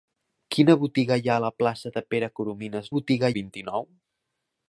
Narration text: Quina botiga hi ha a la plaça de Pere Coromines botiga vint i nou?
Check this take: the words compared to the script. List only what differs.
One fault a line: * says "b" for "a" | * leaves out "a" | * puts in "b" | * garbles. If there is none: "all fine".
all fine